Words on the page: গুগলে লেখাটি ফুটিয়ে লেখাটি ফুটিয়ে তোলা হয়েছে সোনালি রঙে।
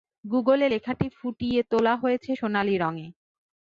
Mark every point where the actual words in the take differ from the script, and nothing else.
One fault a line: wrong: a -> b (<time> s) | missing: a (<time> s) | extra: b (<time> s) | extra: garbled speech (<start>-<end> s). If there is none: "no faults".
missing: লেখাটি ফুটিয়ে (1.6 s)